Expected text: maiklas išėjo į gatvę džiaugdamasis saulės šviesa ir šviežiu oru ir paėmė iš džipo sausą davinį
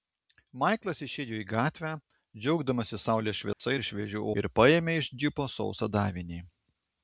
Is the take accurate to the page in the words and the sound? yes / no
no